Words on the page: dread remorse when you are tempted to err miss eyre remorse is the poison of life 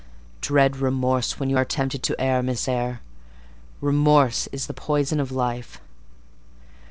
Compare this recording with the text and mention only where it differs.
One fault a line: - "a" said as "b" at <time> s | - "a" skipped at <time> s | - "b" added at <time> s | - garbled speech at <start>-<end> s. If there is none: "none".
none